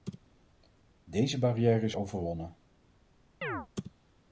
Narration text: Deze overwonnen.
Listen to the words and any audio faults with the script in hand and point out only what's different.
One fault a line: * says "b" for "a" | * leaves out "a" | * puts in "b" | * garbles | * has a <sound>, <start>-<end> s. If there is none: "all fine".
* puts in "barrière is"
* has a chirp, 3.4-3.7 s